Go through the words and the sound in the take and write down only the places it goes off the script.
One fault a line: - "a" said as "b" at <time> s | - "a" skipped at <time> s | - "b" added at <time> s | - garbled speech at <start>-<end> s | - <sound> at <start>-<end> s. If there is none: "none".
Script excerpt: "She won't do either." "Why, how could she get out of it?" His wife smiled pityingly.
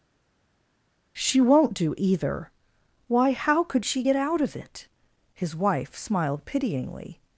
none